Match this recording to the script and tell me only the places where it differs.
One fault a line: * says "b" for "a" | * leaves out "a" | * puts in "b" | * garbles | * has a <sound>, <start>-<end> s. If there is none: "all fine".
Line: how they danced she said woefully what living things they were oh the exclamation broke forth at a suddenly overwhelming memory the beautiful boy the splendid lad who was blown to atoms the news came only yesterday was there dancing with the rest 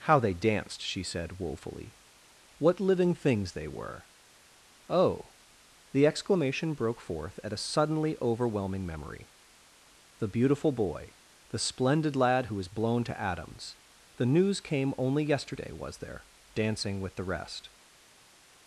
all fine